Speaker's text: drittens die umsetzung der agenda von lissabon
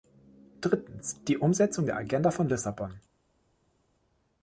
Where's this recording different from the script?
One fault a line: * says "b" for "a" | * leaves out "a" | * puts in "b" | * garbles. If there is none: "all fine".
all fine